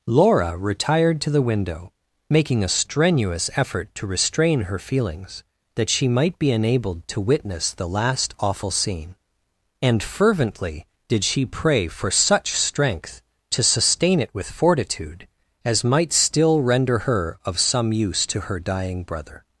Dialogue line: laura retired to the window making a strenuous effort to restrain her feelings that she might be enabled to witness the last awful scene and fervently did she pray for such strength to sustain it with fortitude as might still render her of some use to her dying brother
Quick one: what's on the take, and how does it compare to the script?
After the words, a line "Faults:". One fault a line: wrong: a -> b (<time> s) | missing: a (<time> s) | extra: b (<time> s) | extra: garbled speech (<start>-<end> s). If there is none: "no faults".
laura retired to the window making a strenuous effort to restrain her feelings that she might be enabled to witness the last awful scene and fervently did she pray for such strength to sustain it with fortitude as might still render her of some use to her dying brother
Faults:
no faults